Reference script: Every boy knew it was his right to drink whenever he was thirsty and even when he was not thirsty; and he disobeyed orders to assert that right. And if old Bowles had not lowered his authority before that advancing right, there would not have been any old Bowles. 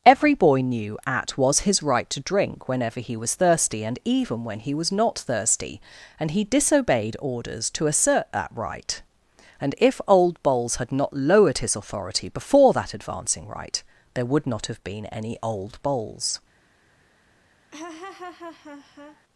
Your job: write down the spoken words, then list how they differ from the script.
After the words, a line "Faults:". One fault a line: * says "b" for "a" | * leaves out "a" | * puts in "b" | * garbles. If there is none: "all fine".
Every boy knew at was his right to drink whenever he was thirsty and even when he was not thirsty; and he disobeyed orders to assert that right. And if old Bowles had not lowered his authority before that advancing right, there would not have been any old Bowles.
Faults:
* says "at" for "it"